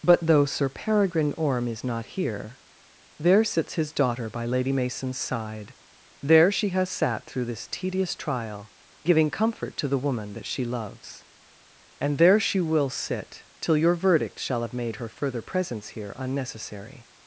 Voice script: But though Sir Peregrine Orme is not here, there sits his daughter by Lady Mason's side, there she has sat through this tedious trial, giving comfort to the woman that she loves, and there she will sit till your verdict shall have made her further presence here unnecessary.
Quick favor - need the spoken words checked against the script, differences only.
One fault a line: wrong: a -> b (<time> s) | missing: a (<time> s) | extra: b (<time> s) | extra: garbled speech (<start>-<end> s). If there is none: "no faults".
no faults